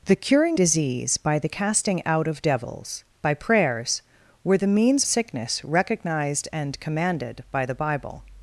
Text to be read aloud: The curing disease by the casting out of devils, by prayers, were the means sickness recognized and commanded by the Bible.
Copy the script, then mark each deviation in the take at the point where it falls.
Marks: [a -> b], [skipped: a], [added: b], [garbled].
The curing disease by the casting out of devils, by prayers, were the means sickness recognized and commanded by the Bible.